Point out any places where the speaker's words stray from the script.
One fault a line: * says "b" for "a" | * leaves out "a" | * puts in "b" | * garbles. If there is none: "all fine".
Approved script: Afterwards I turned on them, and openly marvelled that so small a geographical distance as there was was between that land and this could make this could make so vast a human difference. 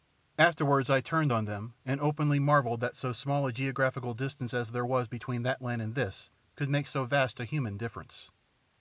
* leaves out "was"
* leaves out "this could make"